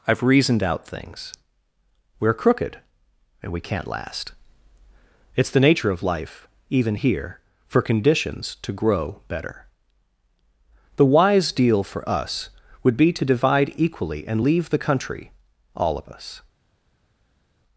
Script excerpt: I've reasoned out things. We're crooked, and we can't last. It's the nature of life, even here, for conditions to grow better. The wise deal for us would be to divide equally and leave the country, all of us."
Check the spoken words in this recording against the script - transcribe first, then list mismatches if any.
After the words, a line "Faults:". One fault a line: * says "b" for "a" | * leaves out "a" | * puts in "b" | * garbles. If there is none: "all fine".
I've reasoned out things. We're crooked, and we can't last. It's the nature of life, even here, for conditions to grow better. The wise deal for us would be to divide equally and leave the country, all of us."
Faults:
all fine